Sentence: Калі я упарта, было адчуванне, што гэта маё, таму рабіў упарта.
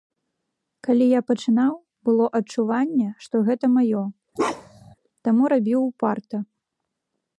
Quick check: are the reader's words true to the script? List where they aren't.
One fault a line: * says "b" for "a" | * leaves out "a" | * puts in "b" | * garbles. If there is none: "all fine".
* says "пачынаў" for "упарта"